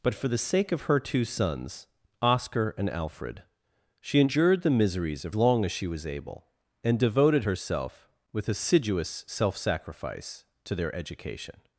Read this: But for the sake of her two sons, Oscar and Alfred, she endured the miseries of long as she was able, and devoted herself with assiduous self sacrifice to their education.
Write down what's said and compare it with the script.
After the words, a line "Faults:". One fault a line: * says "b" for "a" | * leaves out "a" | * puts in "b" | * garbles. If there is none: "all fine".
But for the sake of her two sons, Oscar and Alfred, she endured the miseries of long as she was able, and devoted herself with assiduous self sacrifice to their education.
Faults:
all fine